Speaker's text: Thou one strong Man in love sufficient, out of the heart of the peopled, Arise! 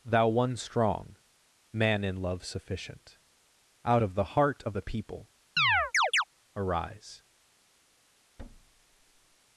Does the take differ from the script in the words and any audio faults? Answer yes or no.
yes